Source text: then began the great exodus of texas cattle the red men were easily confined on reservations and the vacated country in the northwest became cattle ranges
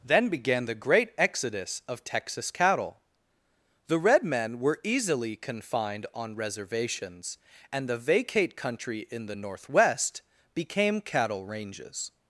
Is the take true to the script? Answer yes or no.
no